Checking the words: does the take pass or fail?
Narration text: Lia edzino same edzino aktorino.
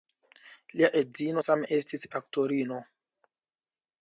fail